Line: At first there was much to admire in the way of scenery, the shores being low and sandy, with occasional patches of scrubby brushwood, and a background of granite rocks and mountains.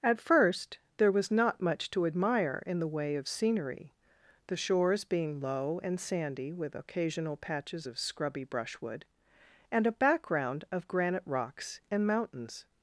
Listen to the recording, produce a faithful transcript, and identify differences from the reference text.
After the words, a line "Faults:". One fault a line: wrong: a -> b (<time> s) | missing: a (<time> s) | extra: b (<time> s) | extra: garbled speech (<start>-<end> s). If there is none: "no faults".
At first there was not much to admire in the way of scenery, the shores being low and sandy, with occasional patches of scrubby brushwood, and a background of granite rocks and mountains.
Faults:
extra: not (1.3 s)